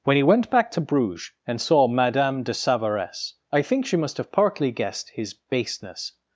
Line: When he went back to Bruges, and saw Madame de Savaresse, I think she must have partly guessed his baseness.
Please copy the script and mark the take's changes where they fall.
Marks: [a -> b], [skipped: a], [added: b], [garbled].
When he went back to Bruges, and saw Madame de Savaresse, I think she must have partly guessed his baseness.